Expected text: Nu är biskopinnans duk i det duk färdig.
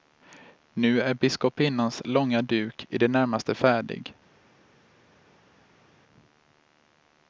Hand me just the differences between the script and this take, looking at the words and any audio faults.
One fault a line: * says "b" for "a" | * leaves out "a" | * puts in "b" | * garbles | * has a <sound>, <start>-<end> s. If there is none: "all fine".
* puts in "långa"
* says "närmaste" for "duk"